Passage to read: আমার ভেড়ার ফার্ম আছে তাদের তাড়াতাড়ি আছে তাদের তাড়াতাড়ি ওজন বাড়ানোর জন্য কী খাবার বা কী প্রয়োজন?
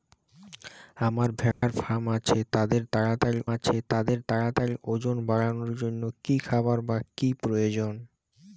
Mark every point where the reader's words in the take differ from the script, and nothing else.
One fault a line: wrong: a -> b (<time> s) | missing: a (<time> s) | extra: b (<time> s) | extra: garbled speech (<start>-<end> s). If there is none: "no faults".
no faults